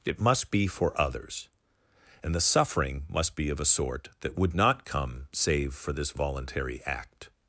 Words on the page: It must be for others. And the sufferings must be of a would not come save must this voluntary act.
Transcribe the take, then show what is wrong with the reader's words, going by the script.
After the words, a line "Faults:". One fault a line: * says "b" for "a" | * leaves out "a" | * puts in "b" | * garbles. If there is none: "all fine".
It must be for others. And the suffering must be of a sort that would not come save for this voluntary act.
Faults:
* says "suffering" for "sufferings"
* puts in "sort that"
* says "for" for "must"